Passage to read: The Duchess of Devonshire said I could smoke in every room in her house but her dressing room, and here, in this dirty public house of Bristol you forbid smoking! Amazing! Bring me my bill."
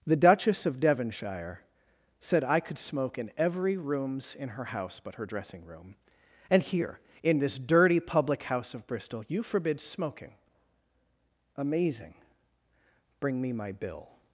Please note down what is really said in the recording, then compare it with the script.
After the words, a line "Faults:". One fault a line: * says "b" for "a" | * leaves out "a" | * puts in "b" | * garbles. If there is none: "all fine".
The Duchess of Devonshire said I could smoke in every rooms in her house but her dressing room, and here, in this dirty public house of Bristol you forbid smoking! Amazing! Bring me my bill."
Faults:
* says "rooms" for "room"